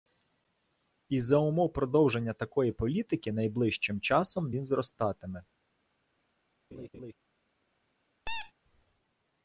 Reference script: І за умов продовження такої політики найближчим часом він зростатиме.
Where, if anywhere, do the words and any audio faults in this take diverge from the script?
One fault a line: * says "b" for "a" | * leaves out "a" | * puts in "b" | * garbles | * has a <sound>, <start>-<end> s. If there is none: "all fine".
* has a laugh, 6.7-7.1 s
* has a squeak, 8.3-8.5 s